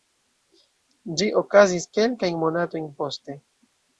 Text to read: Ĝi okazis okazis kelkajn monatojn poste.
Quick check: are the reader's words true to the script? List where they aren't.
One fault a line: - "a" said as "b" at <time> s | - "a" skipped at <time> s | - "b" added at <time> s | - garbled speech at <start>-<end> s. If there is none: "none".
- "okazis" skipped at 1.9 s